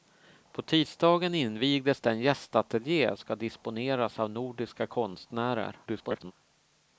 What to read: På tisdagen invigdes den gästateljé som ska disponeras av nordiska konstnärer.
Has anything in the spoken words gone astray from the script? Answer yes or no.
yes